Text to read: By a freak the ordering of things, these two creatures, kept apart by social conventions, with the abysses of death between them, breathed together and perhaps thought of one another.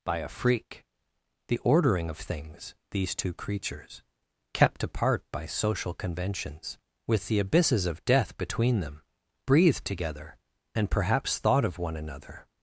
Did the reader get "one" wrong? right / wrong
right